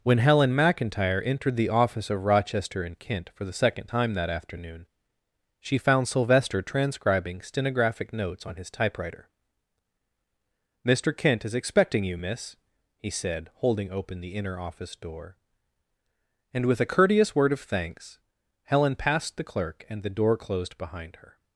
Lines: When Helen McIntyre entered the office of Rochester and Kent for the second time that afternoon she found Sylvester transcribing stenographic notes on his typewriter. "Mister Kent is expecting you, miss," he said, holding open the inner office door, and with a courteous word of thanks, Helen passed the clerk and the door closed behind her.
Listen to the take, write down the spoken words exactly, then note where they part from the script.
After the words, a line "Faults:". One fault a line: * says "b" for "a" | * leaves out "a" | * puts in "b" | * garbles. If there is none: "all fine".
When Helen McIntyre entered the office of Rochester and Kent for the second time that afternoon she found Sylvester transcribing stenographic notes on his typewriter. "Mister Kent is expecting you, miss," he said, holding open the inner office door, and with a courteous word of thanks, Helen passed the clerk and the door closed behind her.
Faults:
all fine